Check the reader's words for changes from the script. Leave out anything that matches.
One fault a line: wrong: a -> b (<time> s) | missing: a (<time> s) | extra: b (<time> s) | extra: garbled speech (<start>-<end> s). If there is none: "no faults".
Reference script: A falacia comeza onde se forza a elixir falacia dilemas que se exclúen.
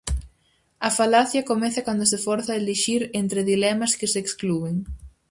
wrong: onde -> cando (1.9 s)
wrong: falacia -> entre (3.2 s)